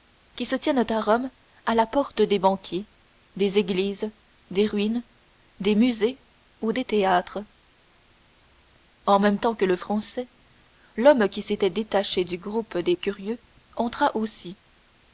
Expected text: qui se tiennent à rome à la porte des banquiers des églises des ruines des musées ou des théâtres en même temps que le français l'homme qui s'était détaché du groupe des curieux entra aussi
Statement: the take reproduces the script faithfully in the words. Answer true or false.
true